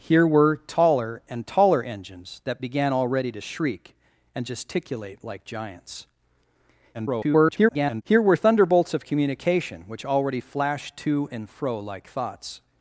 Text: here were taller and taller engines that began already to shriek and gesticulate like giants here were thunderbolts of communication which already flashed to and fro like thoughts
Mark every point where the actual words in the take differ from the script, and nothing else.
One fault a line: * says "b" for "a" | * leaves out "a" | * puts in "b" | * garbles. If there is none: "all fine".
* garbles